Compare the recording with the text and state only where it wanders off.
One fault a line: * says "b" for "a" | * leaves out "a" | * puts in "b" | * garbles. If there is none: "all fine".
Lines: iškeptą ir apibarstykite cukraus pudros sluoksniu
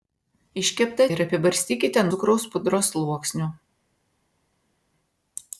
all fine